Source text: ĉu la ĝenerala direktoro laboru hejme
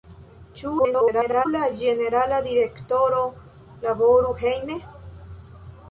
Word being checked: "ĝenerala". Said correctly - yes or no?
yes